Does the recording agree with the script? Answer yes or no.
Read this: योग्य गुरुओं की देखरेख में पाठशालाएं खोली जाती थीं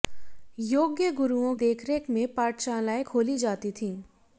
no